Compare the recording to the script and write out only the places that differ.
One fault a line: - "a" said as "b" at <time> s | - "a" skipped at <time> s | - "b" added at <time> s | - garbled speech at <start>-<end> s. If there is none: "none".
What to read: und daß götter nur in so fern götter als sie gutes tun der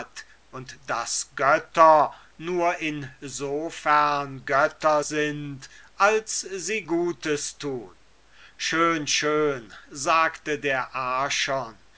- "sind" added at 5.0 s
- "schön schön sagte" added at 8.6 s